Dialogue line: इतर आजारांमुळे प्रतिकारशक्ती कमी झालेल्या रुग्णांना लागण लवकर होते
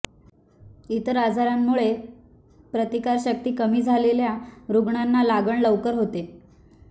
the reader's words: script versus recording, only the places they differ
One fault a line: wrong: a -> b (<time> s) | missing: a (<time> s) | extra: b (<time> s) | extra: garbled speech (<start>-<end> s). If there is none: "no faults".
no faults